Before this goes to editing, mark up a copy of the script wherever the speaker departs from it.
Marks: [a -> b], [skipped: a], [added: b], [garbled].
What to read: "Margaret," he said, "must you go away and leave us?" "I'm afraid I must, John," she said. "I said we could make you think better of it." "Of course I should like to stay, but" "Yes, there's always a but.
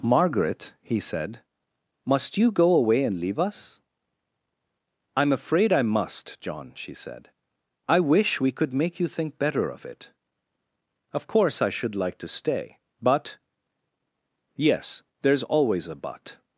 "Margaret," he said, "must you go away and leave us?" "I'm afraid I must, John," she said. "I [said -> wish] we could make you think better of it." "Of course I should like to stay, but" "Yes, there's always a but.